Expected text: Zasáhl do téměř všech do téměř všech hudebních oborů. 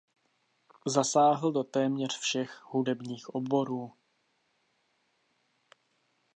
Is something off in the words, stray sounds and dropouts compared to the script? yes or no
yes